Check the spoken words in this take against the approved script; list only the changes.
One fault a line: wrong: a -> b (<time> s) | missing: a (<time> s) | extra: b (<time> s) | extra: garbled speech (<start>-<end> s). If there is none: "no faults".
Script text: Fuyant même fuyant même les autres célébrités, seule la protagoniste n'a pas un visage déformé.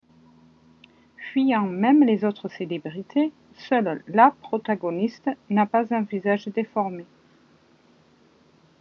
missing: fuyant même (2.0 s)